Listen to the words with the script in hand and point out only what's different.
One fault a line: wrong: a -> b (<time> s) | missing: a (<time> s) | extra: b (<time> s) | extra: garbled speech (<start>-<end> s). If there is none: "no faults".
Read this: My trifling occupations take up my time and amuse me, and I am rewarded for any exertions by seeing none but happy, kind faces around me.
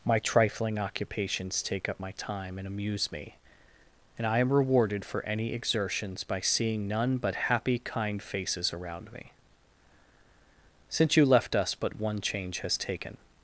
extra: Since you left us but one change has taken (10.9 s)